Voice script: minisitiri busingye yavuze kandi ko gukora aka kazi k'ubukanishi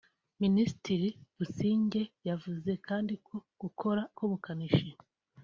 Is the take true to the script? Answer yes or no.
no